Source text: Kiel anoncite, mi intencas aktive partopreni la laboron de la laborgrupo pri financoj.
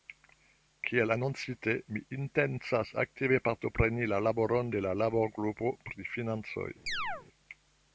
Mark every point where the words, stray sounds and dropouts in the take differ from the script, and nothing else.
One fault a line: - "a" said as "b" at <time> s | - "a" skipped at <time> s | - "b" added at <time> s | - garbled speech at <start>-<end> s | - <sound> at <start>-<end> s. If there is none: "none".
- chirp at 6.9-7.3 s